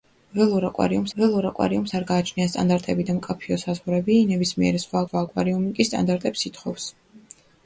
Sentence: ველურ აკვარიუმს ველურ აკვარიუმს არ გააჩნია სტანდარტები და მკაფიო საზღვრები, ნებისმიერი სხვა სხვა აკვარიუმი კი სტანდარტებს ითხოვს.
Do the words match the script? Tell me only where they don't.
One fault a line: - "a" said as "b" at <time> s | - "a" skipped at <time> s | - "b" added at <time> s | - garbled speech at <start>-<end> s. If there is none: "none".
none